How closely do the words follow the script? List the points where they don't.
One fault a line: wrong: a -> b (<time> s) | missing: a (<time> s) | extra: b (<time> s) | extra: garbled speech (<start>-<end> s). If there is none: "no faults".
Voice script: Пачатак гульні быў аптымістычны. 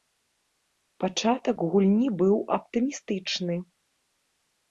no faults